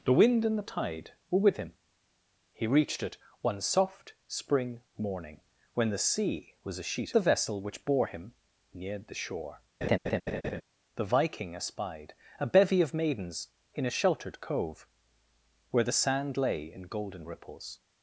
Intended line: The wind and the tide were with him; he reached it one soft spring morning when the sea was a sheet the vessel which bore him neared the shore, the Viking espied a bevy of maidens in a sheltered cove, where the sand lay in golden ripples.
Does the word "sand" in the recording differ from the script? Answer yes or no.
no